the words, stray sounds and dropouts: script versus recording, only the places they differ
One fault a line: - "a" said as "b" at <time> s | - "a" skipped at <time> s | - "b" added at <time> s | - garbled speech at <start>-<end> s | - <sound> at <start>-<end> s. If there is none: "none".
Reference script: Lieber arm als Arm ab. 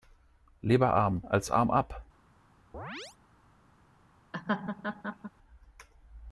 - chirp at 2.7-3.2 s
- laugh at 4.3-5.3 s